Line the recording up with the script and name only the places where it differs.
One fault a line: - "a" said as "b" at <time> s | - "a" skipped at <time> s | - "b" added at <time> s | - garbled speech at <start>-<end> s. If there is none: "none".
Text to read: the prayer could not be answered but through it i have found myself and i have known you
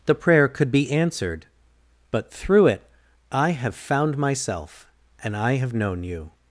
- "not" skipped at 0.7 s